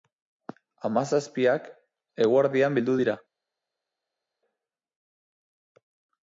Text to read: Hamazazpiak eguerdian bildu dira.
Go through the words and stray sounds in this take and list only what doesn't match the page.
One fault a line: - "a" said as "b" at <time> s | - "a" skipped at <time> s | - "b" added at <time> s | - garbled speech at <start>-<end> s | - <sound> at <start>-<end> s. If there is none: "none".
none